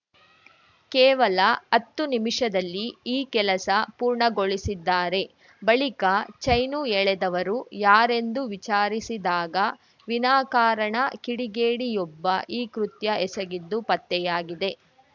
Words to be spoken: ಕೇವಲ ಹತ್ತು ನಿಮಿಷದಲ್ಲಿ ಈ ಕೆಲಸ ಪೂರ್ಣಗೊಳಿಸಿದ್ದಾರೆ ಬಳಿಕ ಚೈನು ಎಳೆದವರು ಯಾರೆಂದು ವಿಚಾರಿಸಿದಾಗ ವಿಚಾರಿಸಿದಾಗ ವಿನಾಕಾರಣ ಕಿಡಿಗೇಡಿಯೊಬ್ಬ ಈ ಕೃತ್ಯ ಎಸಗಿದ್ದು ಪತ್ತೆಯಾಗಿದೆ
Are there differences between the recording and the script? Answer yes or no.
yes